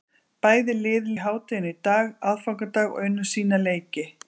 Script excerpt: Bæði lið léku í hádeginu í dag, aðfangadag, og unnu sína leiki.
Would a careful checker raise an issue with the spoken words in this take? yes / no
yes